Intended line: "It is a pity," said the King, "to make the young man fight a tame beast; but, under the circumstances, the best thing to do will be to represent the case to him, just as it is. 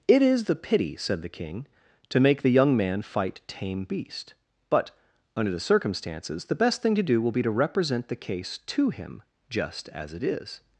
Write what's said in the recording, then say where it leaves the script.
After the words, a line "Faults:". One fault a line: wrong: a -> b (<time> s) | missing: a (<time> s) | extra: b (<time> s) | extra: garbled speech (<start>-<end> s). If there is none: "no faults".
"It is the pity," said the King, "to make the young man fight tame beast; but, under the circumstances, the best thing to do will be to represent the case to him, just as it is.
Faults:
wrong: a -> the (0.5 s)
missing: a (3.4 s)